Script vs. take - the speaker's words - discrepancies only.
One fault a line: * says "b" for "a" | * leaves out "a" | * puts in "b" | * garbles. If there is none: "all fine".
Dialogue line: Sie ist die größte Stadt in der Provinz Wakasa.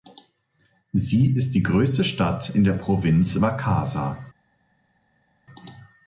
all fine